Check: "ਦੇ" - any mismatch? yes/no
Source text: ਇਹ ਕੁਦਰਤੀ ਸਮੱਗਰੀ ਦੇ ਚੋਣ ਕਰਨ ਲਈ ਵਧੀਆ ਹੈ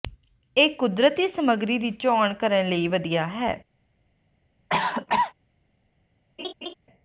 yes